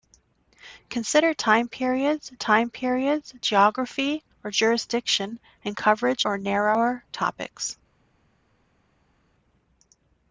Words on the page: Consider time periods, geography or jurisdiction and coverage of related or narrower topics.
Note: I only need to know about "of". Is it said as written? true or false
false